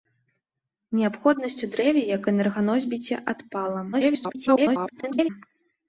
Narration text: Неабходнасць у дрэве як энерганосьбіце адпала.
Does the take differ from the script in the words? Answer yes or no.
yes